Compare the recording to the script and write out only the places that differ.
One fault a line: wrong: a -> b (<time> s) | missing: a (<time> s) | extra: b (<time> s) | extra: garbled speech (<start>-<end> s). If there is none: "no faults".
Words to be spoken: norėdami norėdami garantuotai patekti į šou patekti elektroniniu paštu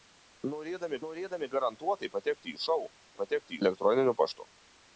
no faults